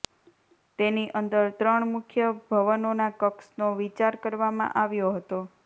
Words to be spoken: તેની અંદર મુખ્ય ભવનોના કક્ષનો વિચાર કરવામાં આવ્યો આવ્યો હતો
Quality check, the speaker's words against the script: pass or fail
fail